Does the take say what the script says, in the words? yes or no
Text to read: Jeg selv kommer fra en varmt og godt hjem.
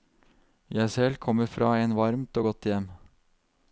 yes